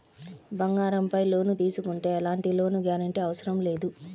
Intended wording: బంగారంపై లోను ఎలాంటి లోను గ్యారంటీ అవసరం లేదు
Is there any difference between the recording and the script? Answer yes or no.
yes